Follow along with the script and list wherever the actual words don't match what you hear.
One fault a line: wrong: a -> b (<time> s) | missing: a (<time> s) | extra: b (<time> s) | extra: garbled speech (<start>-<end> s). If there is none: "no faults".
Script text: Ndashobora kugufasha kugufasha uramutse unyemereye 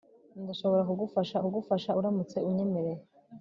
no faults